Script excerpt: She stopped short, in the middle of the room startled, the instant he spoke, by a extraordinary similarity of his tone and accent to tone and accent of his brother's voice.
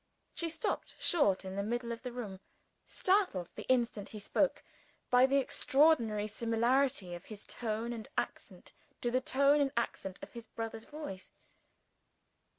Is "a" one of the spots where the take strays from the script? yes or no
yes